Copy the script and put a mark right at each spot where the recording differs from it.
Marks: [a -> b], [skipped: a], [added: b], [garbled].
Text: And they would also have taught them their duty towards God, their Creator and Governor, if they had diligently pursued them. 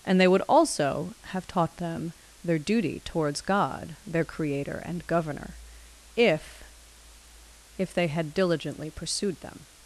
And they would also have taught them their duty towards God, their Creator and Governor, if [added: if] they had diligently pursued them.